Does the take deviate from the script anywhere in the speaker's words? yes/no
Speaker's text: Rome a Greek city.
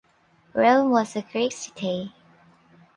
yes